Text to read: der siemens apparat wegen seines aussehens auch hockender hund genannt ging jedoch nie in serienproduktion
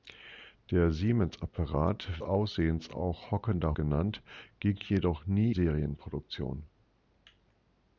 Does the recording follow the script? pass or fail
fail